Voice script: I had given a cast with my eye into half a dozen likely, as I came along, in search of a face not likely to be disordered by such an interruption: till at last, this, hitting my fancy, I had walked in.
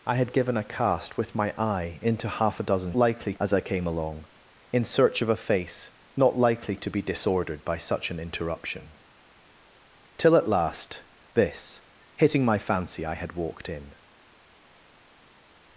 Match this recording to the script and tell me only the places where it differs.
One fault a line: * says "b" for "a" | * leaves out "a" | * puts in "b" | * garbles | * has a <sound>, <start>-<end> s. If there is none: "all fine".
all fine